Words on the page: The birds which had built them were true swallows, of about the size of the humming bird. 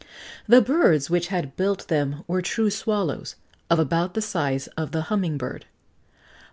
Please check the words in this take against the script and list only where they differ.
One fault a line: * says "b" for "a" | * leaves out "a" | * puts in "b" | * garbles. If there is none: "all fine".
all fine